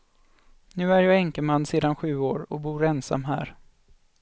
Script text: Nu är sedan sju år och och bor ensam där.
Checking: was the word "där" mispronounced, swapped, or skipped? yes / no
yes